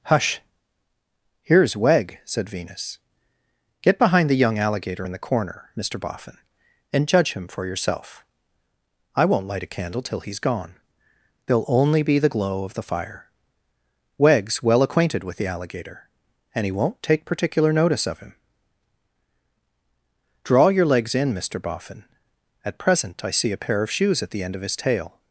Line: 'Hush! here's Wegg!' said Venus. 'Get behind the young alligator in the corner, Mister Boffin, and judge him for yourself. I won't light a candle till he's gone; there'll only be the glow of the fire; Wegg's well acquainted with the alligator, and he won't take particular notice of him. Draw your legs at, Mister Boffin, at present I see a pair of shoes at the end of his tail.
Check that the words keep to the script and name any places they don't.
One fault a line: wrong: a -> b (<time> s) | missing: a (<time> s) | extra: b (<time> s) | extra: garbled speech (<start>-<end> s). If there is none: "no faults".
wrong: at -> in (21.1 s)